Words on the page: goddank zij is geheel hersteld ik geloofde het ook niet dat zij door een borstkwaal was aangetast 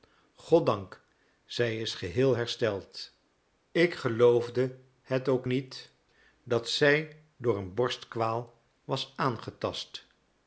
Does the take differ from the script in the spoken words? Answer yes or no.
no